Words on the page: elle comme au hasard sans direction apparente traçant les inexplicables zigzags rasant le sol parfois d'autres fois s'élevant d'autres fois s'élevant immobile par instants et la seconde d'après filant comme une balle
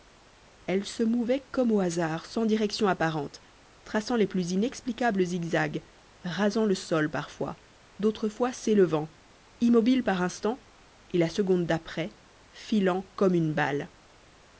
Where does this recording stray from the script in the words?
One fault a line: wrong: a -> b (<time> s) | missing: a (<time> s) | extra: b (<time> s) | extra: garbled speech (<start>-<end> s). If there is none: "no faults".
extra: se mouvait (0.8 s)
extra: plus (4.2 s)
missing: d'autres fois s'élevant (9.1 s)